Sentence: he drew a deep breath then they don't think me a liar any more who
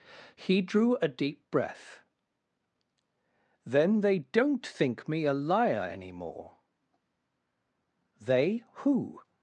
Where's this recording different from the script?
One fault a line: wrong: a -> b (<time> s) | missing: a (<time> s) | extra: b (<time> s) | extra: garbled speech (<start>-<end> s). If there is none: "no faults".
extra: they (8.2 s)